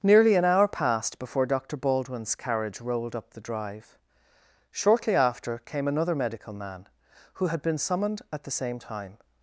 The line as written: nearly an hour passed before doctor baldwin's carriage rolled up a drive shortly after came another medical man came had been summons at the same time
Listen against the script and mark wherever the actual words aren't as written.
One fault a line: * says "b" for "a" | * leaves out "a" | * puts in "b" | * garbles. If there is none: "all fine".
* says "the" for "a"
* says "who" for "came"
* says "summoned" for "summons"